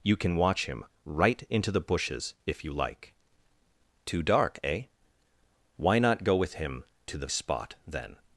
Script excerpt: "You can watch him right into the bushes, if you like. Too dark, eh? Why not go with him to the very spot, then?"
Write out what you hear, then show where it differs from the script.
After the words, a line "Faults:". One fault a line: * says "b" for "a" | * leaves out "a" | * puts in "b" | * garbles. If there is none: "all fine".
"You can watch him right into the bushes, if you like. Too dark, eh? Why not go with him to the spot, then?"
Faults:
* leaves out "very"